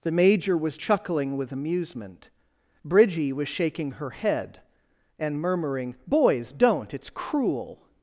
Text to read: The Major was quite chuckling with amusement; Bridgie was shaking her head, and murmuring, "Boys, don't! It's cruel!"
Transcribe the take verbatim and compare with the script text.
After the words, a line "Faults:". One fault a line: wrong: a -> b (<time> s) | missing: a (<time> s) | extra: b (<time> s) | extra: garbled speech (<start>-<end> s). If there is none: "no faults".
The Major was chuckling with amusement; Bridgie was shaking her head, and murmuring, "Boys, don't! It's cruel!"
Faults:
missing: quite (0.8 s)